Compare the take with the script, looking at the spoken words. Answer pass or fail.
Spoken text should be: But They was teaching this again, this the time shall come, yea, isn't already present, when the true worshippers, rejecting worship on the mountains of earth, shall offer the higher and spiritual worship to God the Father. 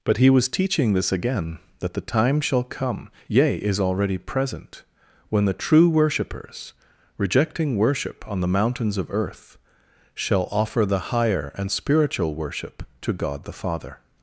fail